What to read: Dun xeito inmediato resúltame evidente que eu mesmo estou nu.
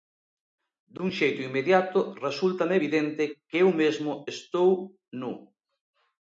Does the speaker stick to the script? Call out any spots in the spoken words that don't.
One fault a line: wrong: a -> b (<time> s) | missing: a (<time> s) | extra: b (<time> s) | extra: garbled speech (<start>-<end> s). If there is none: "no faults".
no faults